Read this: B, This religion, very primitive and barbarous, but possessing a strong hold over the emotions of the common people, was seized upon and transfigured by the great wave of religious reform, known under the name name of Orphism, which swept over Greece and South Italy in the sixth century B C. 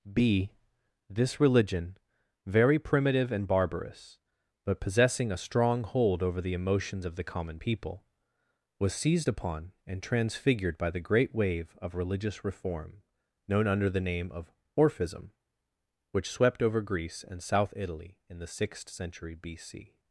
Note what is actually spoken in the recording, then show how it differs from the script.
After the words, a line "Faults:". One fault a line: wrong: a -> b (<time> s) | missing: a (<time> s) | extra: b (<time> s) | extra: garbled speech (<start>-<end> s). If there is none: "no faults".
B, This religion, very primitive and barbarous, but possessing a strong hold over the emotions of the common people, was seized upon and transfigured by the great wave of religious reform, known under the name of Orphism, which swept over Greece and South Italy in the sixth century B C.
Faults:
missing: name (14.3 s)